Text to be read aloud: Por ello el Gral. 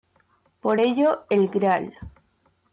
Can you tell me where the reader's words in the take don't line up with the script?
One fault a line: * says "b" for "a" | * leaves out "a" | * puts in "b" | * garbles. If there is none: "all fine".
all fine